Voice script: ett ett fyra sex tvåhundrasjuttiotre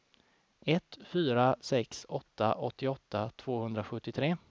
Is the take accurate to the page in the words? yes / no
no